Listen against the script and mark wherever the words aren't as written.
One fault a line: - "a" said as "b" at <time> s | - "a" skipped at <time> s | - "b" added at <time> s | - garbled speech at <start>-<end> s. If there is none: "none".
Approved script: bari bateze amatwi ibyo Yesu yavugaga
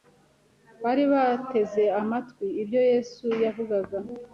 none